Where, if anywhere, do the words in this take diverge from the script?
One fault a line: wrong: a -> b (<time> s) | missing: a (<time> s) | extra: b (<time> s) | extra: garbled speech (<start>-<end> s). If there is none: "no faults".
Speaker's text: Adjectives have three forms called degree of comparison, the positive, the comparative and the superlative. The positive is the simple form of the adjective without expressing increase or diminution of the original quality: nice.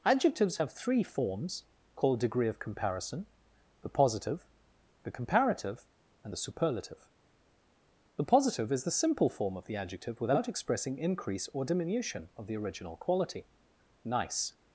no faults